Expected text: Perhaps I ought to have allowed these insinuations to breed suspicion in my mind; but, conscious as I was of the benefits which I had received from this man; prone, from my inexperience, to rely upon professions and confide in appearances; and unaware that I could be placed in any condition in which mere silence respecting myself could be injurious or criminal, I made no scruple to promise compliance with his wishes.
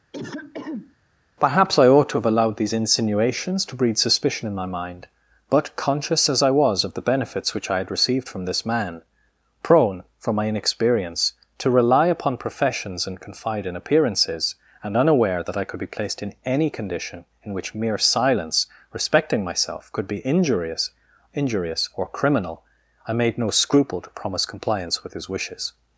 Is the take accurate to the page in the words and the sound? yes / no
no